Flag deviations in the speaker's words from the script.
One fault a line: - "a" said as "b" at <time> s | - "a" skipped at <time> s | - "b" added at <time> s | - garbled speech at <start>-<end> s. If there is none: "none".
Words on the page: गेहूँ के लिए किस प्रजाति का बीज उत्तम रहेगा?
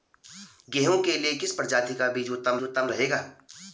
- "उत्तम" added at 2.6 s